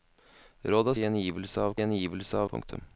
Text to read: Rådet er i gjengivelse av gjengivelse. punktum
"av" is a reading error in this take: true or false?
false